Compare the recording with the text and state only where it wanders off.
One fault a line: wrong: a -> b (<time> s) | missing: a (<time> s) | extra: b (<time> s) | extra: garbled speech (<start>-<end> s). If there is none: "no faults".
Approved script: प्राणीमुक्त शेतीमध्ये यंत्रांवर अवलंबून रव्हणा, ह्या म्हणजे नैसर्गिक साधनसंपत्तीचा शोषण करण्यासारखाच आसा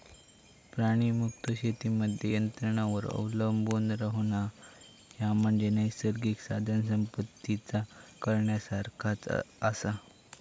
missing: शोषण (7.8 s)